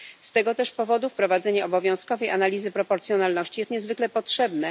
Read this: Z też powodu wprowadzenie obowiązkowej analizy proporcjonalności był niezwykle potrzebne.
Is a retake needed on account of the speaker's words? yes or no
yes